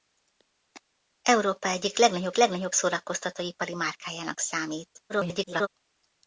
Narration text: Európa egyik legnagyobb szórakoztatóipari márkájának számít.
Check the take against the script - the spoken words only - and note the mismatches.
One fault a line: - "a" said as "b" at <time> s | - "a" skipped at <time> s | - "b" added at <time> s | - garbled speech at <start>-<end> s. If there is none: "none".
- "legnagyobb" added at 2.4 s
- garbled speech at 5.1-5.7 s